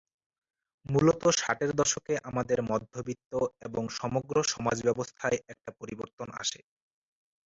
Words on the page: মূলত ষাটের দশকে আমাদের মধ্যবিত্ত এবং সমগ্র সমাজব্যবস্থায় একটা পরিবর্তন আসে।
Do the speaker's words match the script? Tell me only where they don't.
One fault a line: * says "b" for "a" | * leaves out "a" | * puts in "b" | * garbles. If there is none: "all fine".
all fine